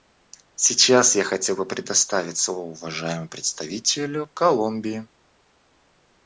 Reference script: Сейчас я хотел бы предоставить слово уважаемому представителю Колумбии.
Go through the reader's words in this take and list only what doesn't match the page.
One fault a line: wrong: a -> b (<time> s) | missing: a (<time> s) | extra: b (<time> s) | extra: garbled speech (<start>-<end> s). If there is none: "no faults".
no faults